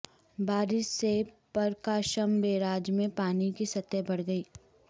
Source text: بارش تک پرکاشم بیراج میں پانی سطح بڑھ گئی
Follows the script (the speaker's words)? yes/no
no